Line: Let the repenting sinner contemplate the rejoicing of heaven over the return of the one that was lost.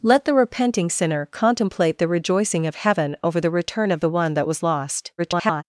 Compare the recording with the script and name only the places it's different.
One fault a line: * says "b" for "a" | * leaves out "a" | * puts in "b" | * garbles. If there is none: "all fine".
* garbles